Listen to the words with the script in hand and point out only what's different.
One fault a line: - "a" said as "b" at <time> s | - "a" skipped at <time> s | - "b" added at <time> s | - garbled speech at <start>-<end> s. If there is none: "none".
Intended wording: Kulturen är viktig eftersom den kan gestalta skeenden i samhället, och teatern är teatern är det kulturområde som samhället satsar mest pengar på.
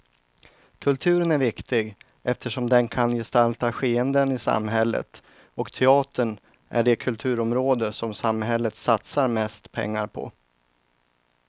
- "teatern är" skipped at 6.8 s